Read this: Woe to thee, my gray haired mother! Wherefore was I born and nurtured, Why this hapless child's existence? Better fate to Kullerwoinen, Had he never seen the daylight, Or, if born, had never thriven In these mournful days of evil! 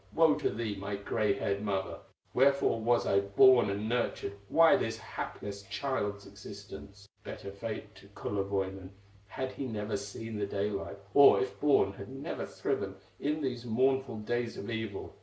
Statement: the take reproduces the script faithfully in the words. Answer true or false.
true